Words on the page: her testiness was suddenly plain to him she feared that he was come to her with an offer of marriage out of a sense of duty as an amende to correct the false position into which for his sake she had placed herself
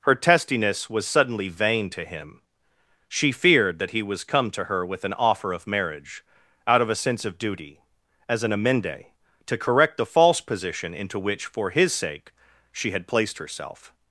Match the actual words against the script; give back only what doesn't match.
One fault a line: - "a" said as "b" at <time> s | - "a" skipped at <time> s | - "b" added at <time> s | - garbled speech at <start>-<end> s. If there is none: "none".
- "plain" said as "vain" at 1.5 s